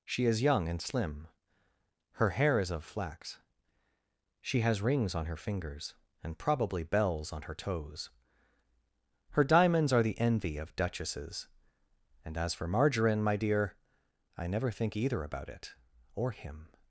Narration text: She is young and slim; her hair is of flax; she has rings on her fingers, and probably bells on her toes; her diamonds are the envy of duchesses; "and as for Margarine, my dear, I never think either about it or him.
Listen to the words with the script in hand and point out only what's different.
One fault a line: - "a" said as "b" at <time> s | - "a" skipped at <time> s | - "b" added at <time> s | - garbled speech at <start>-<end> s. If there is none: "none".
none